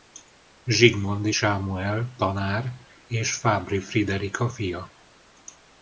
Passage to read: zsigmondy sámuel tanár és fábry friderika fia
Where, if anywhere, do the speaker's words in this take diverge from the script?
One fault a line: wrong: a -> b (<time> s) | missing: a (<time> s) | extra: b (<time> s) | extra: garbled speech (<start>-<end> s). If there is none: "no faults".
no faults